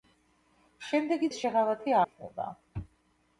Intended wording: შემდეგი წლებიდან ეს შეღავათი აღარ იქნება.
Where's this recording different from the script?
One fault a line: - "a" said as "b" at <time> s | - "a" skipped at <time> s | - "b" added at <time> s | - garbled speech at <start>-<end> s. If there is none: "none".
- "წლებიდან" skipped at 1.3 s
- "აღარ" skipped at 2.0 s